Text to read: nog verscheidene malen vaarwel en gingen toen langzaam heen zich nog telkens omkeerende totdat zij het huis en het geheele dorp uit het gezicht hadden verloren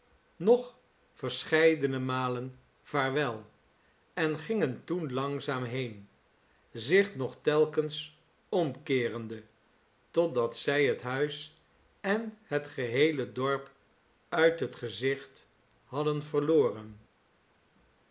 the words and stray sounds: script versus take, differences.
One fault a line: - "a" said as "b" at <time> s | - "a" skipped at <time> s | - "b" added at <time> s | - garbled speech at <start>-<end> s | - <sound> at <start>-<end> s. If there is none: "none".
none